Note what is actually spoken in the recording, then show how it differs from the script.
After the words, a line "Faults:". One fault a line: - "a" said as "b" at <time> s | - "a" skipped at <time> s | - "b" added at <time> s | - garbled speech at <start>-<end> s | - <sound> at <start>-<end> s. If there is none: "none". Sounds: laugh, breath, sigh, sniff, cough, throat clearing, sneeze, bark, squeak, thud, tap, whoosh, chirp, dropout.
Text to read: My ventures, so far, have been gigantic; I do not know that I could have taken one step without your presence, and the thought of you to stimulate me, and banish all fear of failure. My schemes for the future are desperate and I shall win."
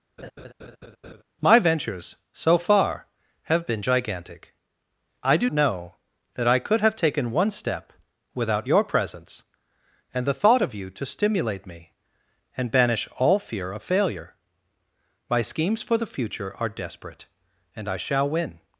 My ventures, so far, have been gigantic; I do know that I could have taken one step without your presence, and the thought of you to stimulate me, and banish all fear of failure. My schemes for the future are desperate and I shall win."
Faults:
- laugh at 0.2-1.2 s
- "not" skipped at 5.5 s